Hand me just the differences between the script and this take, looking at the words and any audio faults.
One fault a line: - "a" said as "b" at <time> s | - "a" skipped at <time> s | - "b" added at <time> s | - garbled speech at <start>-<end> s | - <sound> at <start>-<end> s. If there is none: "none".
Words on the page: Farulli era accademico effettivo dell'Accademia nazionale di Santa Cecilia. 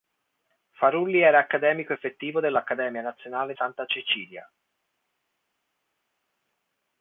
- "di" skipped at 3.5 s